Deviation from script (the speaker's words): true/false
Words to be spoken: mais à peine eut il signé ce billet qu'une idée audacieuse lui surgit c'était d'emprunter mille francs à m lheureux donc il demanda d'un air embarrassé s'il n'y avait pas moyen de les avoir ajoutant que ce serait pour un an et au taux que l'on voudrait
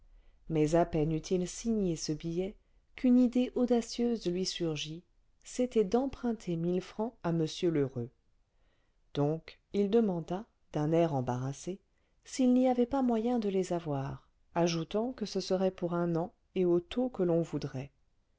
false